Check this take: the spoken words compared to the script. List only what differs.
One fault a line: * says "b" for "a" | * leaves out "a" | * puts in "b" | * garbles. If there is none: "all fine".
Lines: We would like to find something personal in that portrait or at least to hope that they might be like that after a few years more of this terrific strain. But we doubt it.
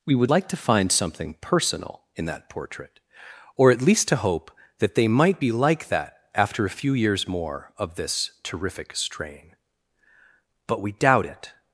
all fine